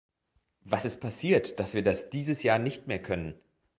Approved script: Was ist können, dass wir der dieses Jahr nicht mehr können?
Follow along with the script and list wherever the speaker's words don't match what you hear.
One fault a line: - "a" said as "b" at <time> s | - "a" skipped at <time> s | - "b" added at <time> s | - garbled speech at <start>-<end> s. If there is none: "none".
- "können" said as "passiert" at 1.0 s
- "der" said as "das" at 1.8 s